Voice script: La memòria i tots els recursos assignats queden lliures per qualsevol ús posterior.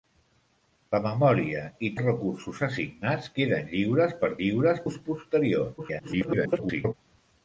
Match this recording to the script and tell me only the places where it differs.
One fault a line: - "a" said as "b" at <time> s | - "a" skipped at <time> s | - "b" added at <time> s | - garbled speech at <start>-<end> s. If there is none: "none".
- "tots" skipped at 1.9 s
- "qualsevol" said as "lliures" at 4.4 s
- garbled speech at 5.8-6.9 s